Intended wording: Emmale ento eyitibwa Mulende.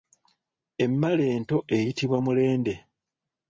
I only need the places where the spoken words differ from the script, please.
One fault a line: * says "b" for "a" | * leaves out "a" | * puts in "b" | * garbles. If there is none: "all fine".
all fine